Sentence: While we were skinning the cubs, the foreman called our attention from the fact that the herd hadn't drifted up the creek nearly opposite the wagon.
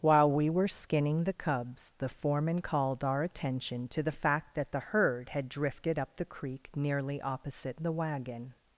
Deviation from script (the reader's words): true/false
true